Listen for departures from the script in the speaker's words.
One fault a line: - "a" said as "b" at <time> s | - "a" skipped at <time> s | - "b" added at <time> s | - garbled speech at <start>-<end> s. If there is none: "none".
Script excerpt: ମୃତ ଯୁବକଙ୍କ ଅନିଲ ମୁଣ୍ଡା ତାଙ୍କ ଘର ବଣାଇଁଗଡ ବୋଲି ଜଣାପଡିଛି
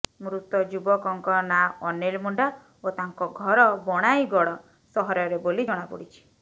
- "ନାଁ" added at 1.5 s
- "ଓ" added at 2.8 s
- "ସହରରେ" added at 5.0 s